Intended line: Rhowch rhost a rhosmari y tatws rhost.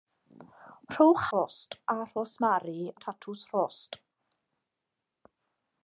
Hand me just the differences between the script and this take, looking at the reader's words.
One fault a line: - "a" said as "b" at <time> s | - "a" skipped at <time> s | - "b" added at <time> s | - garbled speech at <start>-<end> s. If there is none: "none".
none